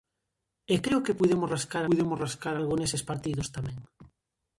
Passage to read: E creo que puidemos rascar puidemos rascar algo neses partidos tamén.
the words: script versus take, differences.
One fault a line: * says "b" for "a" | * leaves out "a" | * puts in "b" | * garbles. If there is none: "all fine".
all fine